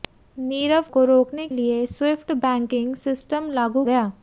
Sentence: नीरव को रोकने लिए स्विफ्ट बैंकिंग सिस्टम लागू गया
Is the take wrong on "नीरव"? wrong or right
right